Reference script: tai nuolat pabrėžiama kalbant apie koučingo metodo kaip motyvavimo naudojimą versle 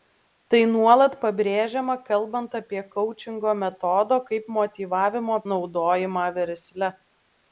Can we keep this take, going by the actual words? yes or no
yes